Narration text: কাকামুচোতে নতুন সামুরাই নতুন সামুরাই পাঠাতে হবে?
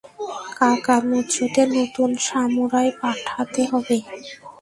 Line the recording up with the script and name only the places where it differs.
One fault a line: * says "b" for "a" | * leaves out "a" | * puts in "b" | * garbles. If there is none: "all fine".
* leaves out "নতুন সামুরাই"